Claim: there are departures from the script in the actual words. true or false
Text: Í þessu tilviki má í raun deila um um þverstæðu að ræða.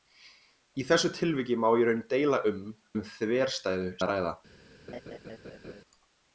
false